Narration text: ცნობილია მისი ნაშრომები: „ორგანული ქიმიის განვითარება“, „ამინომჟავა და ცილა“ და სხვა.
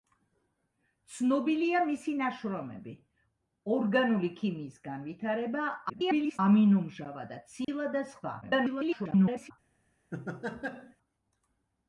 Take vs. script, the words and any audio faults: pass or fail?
fail